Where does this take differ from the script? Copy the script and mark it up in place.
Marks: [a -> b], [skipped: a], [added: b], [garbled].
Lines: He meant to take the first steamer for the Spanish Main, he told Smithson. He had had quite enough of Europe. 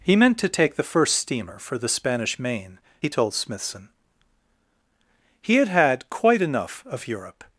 He meant to take the first steamer for the Spanish Main, he told Smithson. He had had quite enough of Europe.